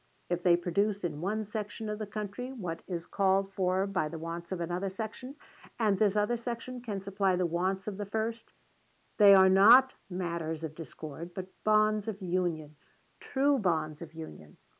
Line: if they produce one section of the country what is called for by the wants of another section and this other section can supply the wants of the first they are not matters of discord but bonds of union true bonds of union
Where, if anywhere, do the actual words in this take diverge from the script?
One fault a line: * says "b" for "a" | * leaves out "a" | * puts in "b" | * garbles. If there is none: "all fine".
* puts in "in"